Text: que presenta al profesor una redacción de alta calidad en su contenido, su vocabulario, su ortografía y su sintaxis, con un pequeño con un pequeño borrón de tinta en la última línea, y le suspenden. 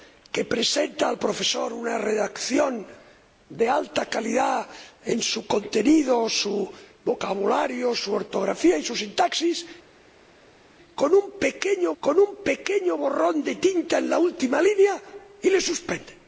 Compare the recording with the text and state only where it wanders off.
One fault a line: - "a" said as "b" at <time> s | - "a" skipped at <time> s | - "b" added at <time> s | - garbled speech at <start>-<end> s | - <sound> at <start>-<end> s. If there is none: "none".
none